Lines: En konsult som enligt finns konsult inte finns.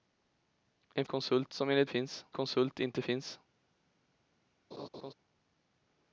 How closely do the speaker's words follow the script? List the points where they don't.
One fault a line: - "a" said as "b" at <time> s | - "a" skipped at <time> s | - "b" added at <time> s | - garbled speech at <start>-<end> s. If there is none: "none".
none